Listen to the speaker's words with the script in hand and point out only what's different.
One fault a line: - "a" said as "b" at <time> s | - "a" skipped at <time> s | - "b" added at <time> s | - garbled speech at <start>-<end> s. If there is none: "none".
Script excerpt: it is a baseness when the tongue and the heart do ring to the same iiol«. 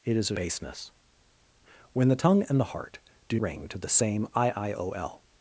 none